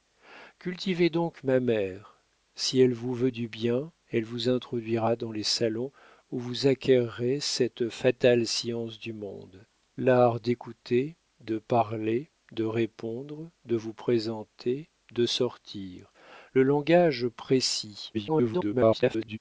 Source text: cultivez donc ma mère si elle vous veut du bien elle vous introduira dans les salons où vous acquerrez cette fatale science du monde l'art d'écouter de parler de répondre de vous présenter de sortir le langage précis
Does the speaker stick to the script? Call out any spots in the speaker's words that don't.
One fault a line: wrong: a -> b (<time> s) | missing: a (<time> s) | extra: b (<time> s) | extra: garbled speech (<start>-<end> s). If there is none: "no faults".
extra: garbled speech (18.1-19.4 s)